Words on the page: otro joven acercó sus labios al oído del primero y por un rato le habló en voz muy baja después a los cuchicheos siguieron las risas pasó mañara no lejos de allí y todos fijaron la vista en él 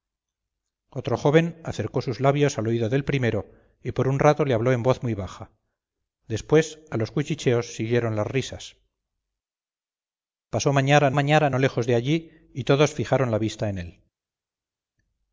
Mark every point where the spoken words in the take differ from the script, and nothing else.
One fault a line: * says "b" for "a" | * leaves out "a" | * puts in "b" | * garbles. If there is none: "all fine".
* puts in "mañara"